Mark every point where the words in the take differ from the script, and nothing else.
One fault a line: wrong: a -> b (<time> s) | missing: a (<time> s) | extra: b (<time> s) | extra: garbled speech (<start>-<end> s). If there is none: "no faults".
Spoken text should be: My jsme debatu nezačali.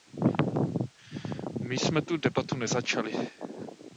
extra: tu (2.0 s)